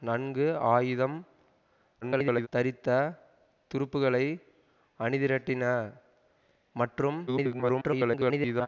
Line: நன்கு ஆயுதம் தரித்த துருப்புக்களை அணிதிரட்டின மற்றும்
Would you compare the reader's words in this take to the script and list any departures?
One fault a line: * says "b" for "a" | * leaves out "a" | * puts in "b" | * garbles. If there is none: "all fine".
* garbles
* garbles